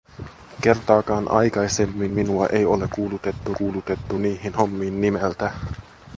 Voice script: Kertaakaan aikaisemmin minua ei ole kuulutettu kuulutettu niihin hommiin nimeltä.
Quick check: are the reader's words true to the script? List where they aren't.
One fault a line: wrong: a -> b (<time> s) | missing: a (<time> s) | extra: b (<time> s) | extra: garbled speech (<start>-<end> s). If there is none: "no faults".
no faults